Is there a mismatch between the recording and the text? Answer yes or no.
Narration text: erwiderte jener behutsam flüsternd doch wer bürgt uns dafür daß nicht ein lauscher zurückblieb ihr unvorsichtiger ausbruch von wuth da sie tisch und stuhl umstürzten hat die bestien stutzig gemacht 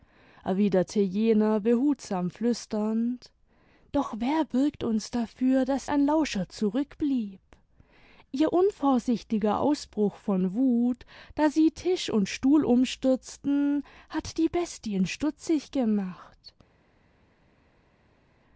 yes